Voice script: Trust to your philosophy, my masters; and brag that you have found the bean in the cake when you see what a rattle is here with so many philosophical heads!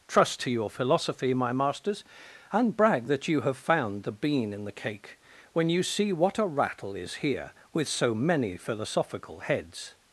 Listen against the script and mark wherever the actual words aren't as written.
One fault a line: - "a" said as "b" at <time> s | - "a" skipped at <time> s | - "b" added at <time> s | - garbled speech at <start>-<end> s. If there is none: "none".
none